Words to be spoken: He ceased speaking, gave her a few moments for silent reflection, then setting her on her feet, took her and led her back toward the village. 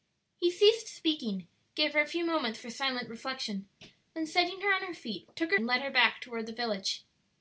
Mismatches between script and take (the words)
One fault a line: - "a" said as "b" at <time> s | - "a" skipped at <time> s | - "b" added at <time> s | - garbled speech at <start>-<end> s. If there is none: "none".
none